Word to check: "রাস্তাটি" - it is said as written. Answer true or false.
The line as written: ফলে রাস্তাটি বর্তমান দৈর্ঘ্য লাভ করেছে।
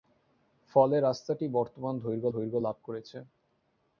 true